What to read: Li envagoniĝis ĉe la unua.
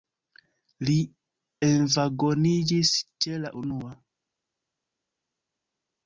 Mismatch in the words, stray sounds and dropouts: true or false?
false